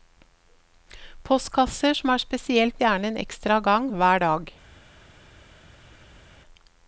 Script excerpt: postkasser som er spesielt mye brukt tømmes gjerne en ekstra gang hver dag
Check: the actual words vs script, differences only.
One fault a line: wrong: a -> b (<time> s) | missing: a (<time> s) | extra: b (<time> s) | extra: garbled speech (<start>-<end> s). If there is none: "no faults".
missing: mye brukt tømmes (2.8 s)